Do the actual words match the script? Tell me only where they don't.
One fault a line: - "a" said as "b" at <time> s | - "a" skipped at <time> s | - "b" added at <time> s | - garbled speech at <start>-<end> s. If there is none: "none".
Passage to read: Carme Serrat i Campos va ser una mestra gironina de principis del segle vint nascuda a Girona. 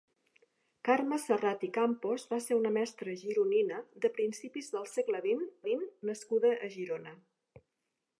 - "vint" added at 5.7 s